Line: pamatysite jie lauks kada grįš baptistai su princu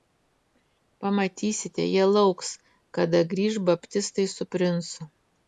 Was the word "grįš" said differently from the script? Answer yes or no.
no